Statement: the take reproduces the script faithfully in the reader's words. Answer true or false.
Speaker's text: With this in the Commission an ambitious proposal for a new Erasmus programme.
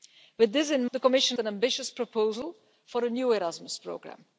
true